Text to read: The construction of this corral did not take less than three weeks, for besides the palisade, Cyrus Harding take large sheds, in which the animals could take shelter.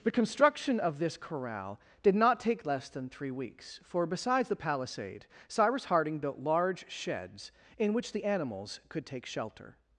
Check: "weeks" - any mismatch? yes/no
no